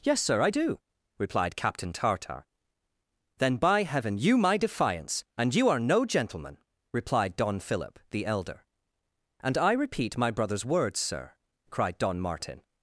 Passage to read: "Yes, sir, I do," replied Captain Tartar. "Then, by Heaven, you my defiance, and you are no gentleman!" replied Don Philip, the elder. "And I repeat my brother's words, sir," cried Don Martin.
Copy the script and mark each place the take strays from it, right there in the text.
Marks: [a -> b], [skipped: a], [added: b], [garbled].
"Yes, sir, I do," replied Captain Tartar. "Then, by Heaven, you my defiance, and you are no gentleman!" replied Don Philip, the elder. "And I repeat my brother's words, sir," cried Don Martin.